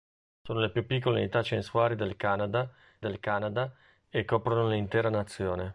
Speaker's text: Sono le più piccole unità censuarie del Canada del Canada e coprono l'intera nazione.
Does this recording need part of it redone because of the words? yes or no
no